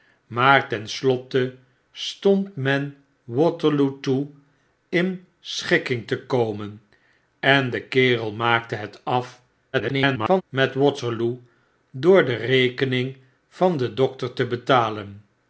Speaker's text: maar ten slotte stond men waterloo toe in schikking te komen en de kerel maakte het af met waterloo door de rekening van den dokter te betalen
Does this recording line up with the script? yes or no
no